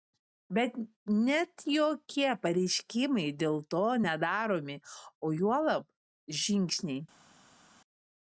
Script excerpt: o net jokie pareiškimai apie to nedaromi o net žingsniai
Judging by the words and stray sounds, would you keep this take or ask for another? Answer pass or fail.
fail